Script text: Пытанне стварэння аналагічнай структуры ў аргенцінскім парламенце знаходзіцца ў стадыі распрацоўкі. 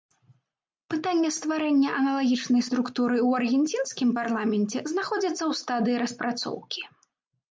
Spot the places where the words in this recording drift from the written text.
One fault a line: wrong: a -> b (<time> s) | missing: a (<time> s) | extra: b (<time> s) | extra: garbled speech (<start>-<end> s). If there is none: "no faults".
no faults